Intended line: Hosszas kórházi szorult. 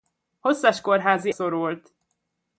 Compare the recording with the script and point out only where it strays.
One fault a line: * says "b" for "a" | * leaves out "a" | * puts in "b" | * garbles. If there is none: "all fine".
all fine